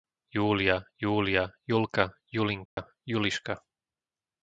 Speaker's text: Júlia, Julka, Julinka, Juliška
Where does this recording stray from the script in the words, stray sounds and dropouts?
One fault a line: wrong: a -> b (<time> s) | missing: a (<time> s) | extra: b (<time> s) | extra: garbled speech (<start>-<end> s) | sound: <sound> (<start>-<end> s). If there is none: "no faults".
extra: júlia (1.0 s)
sound: dropout (2.7-2.8 s)